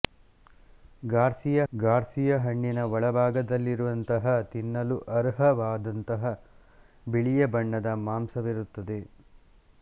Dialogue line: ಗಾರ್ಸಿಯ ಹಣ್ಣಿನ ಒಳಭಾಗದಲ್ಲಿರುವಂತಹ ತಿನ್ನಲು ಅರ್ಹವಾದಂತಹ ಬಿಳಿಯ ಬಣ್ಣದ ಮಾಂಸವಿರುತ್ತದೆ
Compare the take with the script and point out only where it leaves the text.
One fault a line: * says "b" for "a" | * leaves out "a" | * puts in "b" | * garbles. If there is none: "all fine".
* puts in "ಗಾರ್ಸಿಯ"